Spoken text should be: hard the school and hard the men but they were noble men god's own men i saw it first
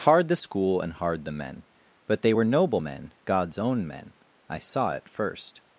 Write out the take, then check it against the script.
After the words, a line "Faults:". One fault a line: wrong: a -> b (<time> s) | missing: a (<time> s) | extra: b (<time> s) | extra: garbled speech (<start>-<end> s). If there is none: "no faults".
hard the school and hard the men but they were noble men god's own men i saw it first
Faults:
no faults